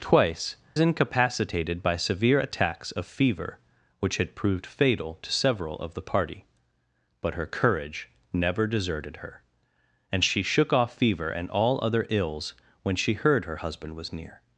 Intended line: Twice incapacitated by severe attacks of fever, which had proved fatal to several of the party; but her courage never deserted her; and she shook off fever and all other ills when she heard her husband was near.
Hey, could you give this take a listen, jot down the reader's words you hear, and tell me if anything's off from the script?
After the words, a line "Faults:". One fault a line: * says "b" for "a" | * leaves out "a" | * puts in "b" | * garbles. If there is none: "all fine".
Twice incapacitated by severe attacks of fever, which had proved fatal to several of the party; but her courage never deserted her; and she shook off fever and all other ills when she heard her husband was near.
Faults:
all fine